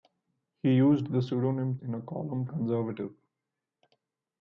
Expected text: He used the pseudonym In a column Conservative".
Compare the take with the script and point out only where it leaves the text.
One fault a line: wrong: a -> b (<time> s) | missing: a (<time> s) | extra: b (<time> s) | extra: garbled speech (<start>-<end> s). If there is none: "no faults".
no faults